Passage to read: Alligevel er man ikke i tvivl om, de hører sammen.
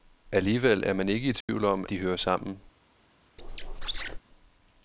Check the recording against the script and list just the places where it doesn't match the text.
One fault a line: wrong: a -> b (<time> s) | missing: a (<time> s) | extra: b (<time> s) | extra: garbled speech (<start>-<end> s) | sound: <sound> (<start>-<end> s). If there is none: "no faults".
sound: dropout (1.4-1.5 s)
sound: squeak (3.4-4.2 s)